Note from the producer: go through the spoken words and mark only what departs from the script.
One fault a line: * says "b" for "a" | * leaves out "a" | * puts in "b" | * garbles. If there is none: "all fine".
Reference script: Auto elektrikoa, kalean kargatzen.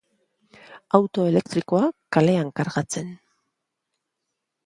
all fine